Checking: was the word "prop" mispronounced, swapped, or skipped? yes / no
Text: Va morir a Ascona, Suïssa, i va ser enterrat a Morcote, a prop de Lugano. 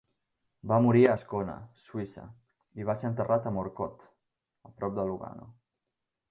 no